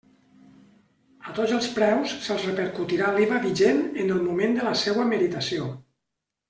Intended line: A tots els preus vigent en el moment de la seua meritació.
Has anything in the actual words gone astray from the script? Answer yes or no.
yes